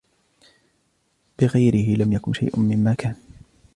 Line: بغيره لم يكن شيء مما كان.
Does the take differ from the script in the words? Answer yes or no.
no